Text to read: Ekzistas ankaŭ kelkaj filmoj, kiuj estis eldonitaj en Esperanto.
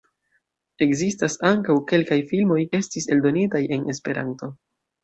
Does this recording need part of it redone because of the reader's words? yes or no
yes